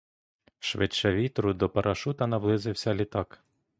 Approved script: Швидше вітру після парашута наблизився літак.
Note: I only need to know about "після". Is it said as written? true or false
false